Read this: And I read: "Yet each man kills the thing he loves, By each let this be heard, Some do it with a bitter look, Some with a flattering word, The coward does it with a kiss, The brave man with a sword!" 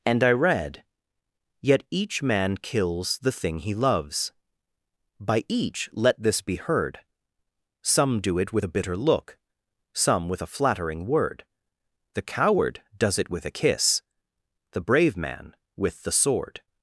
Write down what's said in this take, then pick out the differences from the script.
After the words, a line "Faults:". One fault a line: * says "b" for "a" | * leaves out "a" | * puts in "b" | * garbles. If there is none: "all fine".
And I read: "Yet each man kills the thing he loves, By each let this be heard, Some do it with a bitter look, Some with a flattering word, The coward does it with a kiss, The brave man with the sword!"
Faults:
* says "the" for "a"